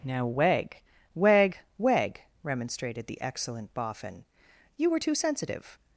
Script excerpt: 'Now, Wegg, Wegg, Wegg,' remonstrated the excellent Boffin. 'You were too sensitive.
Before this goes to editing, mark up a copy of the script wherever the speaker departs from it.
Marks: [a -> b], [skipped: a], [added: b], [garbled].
'Now, Wegg, Wegg, Wegg,' remonstrated the excellent Boffin. 'You were too sensitive.